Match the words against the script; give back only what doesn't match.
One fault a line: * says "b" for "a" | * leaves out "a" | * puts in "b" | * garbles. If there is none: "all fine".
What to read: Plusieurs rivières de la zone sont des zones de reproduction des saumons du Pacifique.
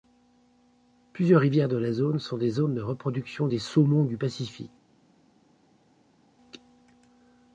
all fine